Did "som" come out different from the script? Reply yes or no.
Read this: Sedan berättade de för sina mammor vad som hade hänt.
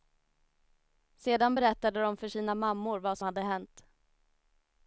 yes